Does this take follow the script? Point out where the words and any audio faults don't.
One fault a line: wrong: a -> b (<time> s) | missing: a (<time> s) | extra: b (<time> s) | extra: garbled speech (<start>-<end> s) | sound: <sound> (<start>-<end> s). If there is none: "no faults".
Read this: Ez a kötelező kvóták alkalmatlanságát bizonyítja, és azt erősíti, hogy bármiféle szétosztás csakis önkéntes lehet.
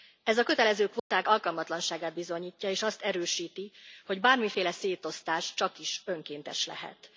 sound: dropout (1.0-1.1 s)